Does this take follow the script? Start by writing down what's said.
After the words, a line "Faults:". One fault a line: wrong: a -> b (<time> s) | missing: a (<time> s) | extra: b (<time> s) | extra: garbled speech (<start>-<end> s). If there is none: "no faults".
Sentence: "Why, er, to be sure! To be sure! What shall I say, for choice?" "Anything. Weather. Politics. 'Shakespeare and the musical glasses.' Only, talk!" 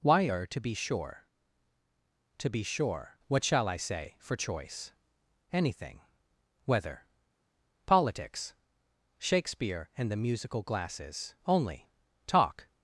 "Why, er, to be sure! To be sure! What shall I say, for choice?" "Anything. Weather. Politics. 'Shakespeare and the musical glasses.' Only, talk!"
Faults:
no faults